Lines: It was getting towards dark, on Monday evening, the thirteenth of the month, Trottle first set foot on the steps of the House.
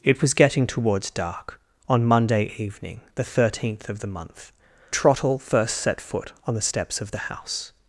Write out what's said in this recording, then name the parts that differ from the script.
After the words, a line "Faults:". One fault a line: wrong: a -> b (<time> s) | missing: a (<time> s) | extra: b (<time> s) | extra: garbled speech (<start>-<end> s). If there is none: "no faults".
It was getting towards dark, on Monday evening, the thirteenth of the month, Trottle first set foot on the steps of the House.
Faults:
no faults